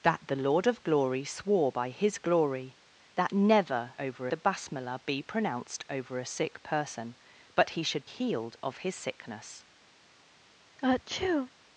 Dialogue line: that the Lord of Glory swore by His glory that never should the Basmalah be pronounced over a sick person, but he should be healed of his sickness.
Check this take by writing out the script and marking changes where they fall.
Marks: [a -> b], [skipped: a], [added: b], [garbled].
that the Lord of Glory swore by His glory that never [should -> over] the Basmalah be pronounced over a sick person, but he should [skipped: be] healed of his sickness.